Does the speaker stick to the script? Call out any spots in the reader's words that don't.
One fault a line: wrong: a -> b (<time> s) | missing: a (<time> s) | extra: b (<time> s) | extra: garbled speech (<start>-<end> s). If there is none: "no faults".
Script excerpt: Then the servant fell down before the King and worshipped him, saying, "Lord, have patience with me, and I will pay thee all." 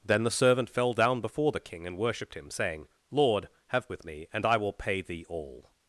missing: patience (3.9 s)